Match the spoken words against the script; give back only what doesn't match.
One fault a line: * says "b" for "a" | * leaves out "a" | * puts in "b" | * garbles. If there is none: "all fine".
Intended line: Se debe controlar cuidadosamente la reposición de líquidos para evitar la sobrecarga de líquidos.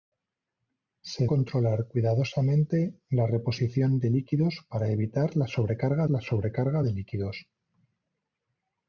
* leaves out "debe"
* puts in "la sobrecarga"